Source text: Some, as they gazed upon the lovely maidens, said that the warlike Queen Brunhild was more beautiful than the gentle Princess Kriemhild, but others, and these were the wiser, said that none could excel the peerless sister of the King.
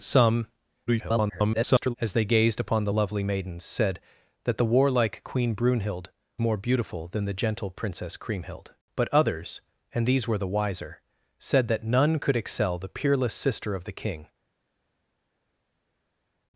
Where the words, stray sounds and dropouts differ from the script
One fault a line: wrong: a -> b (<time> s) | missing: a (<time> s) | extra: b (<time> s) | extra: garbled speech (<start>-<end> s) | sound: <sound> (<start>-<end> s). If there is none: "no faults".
extra: garbled speech (0.9-1.9 s)
missing: was (6.1 s)